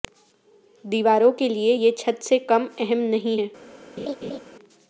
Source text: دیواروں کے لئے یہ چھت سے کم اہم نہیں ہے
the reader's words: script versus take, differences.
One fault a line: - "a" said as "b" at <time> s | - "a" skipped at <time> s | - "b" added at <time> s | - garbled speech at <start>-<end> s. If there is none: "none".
none